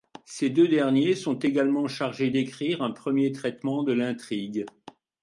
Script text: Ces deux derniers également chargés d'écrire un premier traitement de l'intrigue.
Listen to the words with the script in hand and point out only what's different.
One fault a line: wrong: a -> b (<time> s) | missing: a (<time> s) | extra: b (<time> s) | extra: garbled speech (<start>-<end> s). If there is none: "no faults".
extra: sont (1.1 s)